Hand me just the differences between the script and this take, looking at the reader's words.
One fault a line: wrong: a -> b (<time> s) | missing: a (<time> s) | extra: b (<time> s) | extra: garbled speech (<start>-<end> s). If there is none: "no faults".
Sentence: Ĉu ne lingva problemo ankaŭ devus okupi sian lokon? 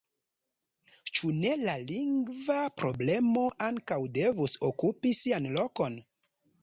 extra: la (1.6 s)